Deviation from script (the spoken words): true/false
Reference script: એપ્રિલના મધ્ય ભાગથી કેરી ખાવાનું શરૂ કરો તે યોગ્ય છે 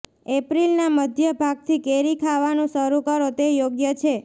false